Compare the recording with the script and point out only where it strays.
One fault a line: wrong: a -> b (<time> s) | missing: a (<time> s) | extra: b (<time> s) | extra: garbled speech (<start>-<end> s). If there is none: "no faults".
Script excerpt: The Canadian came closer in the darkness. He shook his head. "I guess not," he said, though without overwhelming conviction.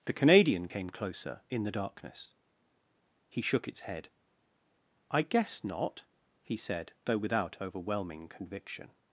wrong: his -> its (3.7 s)